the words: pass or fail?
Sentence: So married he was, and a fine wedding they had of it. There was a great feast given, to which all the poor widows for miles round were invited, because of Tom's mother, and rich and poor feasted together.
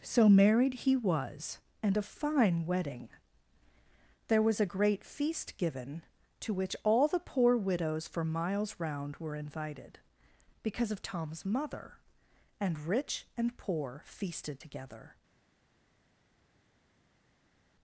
fail